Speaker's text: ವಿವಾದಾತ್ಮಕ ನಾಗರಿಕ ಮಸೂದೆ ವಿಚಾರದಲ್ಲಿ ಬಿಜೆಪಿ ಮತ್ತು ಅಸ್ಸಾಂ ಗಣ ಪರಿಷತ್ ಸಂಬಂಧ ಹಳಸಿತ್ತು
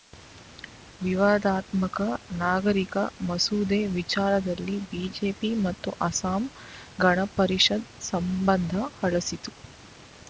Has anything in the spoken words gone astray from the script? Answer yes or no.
no